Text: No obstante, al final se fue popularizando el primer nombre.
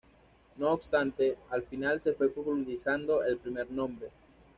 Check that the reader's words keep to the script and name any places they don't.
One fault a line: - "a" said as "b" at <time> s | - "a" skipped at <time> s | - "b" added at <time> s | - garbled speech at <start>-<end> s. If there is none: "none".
none